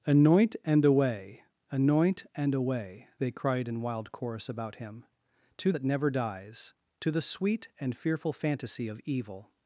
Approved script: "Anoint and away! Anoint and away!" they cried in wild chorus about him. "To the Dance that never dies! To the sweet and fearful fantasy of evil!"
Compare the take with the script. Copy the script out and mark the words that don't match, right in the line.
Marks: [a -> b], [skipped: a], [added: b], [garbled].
"Anoint and away! Anoint and away!" they cried in wild chorus about him. "To [skipped: the Dance] that never dies! To the sweet and fearful fantasy of evil!"